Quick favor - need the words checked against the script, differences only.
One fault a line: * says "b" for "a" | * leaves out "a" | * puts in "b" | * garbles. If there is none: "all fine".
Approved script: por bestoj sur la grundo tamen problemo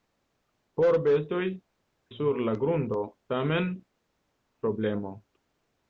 all fine